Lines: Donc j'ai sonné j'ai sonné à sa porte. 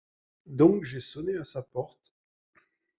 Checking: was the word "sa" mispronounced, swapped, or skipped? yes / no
no